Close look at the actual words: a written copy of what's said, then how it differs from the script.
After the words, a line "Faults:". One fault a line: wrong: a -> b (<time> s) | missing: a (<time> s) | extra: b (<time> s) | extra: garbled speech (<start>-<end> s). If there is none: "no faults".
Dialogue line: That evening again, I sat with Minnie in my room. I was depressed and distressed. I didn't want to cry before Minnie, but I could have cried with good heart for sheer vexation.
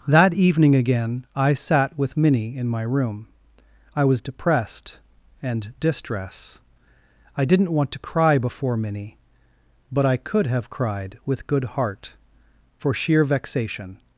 That evening again, I sat with Minnie in my room. I was depressed and distress. I didn't want to cry before Minnie, but I could have cried with good heart for sheer vexation.
Faults:
wrong: distressed -> distress (5.8 s)